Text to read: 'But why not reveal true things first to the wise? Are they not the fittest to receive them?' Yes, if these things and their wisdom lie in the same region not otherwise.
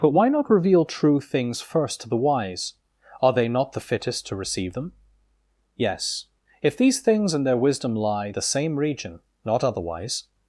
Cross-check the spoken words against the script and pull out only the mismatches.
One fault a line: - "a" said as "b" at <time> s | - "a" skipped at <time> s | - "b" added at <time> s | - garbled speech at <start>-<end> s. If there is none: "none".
- "in" skipped at 8.3 s